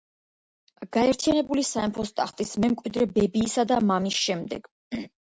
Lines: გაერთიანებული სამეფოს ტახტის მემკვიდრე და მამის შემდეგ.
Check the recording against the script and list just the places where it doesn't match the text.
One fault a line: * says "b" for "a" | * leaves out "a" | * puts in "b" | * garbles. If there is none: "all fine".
* puts in "ბებიისა"